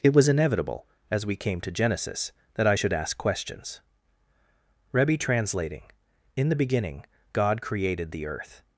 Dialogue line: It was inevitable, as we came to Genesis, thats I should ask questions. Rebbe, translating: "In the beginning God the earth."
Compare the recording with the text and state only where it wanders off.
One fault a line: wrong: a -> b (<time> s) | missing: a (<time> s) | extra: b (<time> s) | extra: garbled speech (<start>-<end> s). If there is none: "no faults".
wrong: thats -> that (2.5 s)
extra: created (7.6 s)